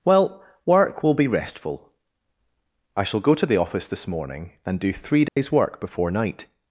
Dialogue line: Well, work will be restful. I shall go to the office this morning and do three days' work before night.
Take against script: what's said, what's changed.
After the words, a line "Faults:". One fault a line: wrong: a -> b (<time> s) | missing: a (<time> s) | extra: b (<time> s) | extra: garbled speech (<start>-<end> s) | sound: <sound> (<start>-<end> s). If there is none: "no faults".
Well, work will be restful. I shall go to the office this morning and do three days' work before night.
Faults:
sound: dropout (5.3-5.4 s)